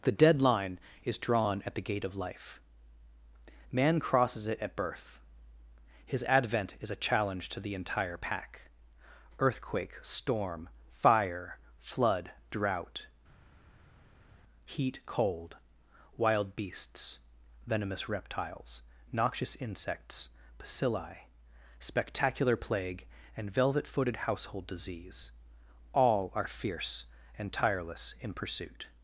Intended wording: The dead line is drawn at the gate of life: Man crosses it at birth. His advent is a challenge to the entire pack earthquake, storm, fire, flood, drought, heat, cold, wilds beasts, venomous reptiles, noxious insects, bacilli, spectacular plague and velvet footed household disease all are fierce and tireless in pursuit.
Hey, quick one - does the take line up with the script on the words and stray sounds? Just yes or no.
no